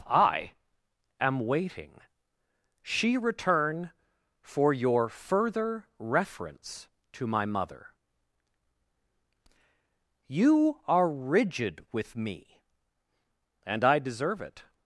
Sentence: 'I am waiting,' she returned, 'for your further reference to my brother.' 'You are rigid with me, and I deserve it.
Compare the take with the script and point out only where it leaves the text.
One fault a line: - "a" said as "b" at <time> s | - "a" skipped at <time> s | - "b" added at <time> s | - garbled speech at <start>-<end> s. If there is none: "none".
- "returned" said as "return" at 3.2 s
- "brother" said as "mother" at 7.5 s